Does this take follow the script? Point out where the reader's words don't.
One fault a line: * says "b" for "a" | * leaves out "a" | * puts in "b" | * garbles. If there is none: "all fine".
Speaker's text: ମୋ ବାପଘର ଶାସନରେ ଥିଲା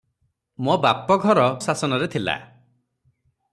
all fine